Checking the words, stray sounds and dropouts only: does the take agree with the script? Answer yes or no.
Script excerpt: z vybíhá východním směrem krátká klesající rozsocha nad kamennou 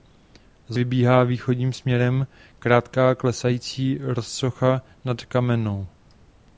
yes